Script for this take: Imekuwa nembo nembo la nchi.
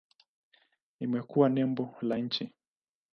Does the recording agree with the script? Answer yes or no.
no